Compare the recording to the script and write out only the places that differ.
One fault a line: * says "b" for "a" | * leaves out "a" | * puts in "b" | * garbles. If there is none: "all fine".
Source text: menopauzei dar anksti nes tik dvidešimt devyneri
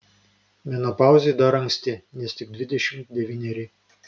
all fine